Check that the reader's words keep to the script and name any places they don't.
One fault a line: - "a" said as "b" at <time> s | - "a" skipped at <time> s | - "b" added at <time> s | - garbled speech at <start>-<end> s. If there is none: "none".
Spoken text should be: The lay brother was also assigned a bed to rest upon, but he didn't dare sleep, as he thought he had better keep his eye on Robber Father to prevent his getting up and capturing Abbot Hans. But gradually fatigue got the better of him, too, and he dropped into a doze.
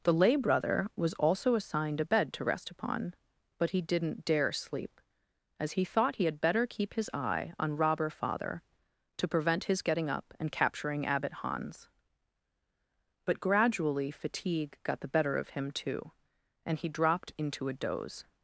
none